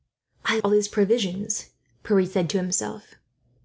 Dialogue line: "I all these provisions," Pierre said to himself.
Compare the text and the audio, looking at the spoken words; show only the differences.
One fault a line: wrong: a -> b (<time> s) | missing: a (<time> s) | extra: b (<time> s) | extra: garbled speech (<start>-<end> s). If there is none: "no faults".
no faults